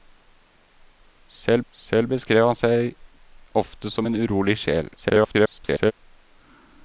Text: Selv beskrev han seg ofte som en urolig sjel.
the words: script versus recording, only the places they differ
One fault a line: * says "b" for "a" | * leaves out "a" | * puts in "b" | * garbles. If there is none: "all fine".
* puts in "selv"
* garbles